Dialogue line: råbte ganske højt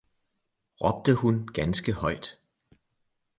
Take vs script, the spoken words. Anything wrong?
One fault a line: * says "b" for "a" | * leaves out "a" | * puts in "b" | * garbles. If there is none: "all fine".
* puts in "hun"